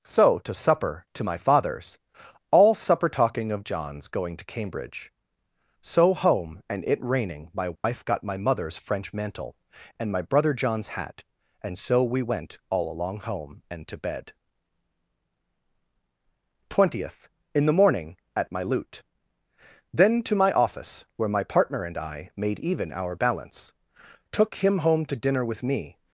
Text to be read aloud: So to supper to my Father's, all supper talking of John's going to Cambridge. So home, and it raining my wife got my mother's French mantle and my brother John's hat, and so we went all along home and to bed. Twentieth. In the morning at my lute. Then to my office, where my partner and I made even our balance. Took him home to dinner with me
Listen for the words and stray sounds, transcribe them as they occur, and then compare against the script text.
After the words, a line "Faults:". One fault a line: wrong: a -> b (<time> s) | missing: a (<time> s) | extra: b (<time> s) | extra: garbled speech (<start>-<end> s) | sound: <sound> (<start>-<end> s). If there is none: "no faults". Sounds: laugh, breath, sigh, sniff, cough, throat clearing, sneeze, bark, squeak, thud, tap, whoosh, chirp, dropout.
So to supper to my Father's, all supper talking of John's going to Cambridge. So home, and it raining my wife got my mother's French mantle and my brother John's hat, and so we went all along home and to bed. Twentieth. In the morning at my lute. Then to my office, where my partner and I made even our balance. Took him home to dinner with me
Faults:
sound: dropout (7.8-7.8 s)